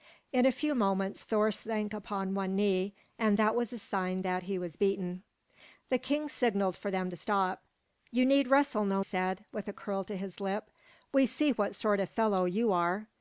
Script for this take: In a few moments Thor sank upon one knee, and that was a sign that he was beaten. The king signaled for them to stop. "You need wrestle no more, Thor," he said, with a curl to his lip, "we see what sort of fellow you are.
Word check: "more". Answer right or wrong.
wrong